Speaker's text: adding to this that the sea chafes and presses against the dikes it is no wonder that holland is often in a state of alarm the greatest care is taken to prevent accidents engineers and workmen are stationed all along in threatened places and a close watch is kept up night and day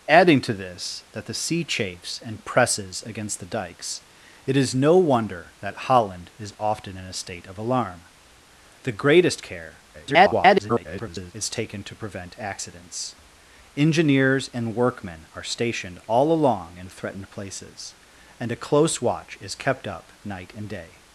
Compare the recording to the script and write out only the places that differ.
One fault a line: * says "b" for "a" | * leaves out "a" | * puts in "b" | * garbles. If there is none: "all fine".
* garbles